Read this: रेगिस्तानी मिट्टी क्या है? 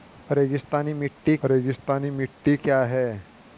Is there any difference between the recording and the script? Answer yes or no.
yes